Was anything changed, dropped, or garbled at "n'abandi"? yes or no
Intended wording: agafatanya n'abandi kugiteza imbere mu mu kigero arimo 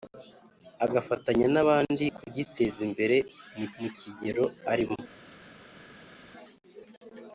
no